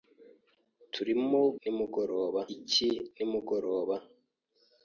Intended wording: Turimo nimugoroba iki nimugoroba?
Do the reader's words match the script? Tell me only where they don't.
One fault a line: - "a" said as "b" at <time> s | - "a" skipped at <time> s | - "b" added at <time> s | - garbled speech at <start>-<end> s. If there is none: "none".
none